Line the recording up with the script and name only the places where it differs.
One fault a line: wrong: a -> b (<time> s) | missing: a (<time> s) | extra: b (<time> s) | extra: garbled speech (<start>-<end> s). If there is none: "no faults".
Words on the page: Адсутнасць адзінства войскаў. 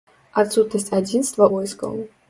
no faults